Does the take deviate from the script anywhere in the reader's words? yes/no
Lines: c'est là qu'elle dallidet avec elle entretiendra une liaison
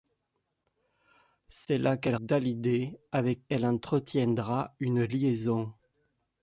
no